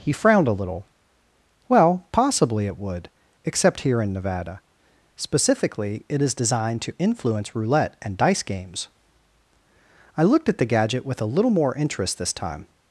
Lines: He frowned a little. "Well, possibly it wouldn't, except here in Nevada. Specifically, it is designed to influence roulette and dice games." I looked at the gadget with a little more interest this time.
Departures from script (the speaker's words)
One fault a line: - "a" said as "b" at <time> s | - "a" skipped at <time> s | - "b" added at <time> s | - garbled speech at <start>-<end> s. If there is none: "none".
- "wouldn't" said as "would" at 2.8 s